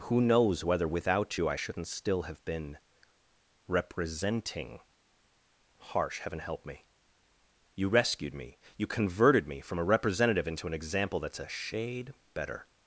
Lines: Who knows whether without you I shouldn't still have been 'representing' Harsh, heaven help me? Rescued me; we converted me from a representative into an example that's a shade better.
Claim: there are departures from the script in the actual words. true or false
true